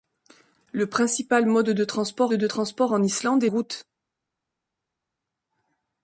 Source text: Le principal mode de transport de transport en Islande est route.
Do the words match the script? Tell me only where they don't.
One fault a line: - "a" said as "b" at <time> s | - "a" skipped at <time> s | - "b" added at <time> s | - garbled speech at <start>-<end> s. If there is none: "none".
none